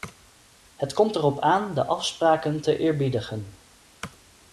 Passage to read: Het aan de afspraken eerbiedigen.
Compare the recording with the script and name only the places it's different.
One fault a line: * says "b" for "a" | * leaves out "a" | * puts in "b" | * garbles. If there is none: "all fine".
* puts in "komt erop"
* puts in "te"